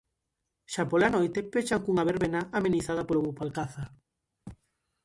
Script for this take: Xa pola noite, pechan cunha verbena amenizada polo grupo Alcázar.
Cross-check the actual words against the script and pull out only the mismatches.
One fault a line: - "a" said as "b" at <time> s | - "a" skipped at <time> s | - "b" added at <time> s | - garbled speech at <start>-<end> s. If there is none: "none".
none